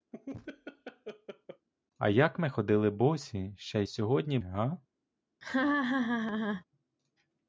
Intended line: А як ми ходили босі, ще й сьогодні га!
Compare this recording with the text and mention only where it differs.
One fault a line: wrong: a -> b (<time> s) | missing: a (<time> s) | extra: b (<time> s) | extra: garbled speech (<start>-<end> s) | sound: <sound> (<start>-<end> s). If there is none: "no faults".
sound: laugh (0.1-1.7 s)
sound: laugh (5.4-6.6 s)